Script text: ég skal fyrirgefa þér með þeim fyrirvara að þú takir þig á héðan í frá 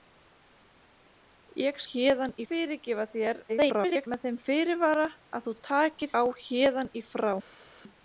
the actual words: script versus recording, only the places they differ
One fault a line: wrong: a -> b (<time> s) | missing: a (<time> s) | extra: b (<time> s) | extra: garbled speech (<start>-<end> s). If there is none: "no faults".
wrong: skal -> héðan (1.9 s)
extra: garbled speech (3.5-4.1 s)
missing: þig (6.1 s)